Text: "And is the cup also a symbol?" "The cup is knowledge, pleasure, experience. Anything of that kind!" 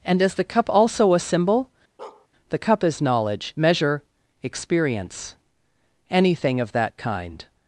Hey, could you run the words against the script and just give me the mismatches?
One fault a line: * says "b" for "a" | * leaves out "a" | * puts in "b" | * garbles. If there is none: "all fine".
* says "measure" for "pleasure"